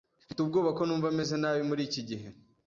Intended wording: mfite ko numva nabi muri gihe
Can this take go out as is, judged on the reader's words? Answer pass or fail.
fail